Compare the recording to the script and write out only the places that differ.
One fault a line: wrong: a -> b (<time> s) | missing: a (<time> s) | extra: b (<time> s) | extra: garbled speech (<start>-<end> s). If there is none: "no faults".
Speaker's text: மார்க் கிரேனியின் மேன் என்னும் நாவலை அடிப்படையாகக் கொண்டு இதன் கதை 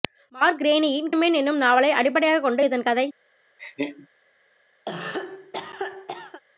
no faults